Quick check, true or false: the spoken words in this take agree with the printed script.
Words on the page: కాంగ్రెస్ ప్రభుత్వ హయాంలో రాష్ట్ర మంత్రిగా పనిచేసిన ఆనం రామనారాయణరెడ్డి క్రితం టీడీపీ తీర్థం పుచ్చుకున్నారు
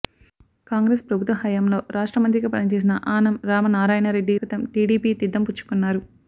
true